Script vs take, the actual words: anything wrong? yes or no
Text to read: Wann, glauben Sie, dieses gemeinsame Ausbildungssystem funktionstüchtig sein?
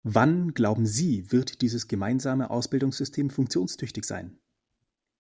yes